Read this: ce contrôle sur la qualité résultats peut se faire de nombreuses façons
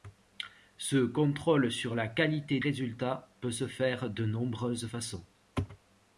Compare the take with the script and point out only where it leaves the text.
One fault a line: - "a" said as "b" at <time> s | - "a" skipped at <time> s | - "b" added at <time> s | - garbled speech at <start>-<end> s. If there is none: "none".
none